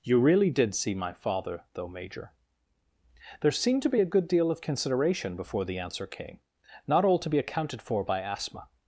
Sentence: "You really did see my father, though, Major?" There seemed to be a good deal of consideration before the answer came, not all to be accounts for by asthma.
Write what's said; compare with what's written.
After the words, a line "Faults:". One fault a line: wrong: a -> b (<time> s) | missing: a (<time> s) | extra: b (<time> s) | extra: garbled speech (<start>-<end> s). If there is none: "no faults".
"You really did see my father, though, Major?" There seemed to be a good deal of consideration before the answer came, not all to be accounted for by asthma.
Faults:
wrong: accounts -> accounted (7.4 s)